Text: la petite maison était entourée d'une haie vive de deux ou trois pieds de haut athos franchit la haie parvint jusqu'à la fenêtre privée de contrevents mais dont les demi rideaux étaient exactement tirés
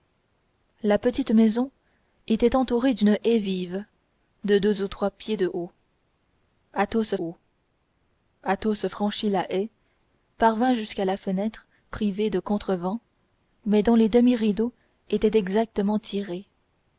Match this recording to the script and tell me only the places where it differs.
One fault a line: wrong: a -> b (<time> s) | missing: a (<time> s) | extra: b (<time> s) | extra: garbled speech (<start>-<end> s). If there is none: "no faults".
extra: haut athos (7.2 s)